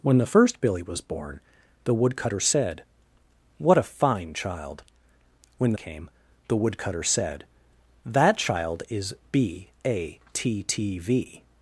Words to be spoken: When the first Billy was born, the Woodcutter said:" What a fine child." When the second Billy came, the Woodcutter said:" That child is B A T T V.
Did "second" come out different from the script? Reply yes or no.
yes